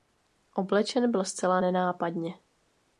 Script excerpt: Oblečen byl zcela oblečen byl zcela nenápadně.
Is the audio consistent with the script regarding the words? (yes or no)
no